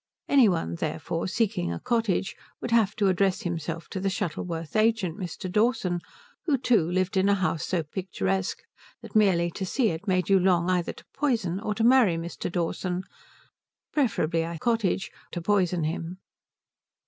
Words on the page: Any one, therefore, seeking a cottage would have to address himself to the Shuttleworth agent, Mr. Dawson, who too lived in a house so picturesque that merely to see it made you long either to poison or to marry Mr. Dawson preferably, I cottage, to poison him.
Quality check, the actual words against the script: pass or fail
pass